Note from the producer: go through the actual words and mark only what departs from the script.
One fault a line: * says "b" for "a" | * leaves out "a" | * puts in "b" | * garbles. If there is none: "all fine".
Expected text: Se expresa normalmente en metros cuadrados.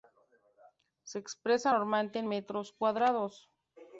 all fine